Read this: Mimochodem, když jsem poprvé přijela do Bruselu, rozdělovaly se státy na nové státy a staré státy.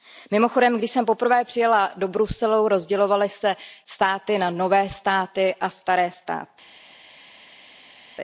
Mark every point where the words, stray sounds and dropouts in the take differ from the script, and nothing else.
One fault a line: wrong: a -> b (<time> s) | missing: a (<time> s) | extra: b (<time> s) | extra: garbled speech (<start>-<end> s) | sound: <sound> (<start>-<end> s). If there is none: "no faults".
no faults